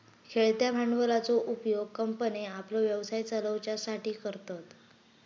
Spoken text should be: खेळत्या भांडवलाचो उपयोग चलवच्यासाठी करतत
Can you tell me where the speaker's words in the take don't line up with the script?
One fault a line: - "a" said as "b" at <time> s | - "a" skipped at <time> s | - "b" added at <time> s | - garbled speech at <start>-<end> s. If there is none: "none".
- "कंपन्ये आपलो व्यवसाय" added at 1.9 s